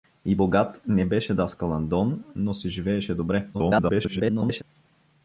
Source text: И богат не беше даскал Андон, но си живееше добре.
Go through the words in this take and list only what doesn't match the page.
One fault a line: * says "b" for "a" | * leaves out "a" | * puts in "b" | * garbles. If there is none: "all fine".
* garbles